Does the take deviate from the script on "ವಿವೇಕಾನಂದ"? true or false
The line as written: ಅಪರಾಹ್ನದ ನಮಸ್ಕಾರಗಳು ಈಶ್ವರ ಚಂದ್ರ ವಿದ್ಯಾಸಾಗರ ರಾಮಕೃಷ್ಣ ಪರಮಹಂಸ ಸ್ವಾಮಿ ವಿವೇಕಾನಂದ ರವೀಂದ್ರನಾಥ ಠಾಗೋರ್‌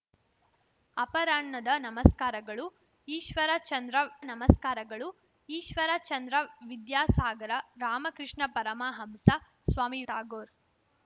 true